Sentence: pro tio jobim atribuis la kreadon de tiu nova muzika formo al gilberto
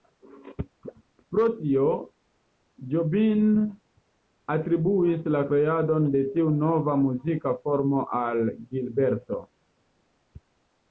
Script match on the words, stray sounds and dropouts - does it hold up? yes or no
yes